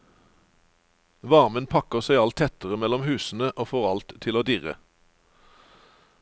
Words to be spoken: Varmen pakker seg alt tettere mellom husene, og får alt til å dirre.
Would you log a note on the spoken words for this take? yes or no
no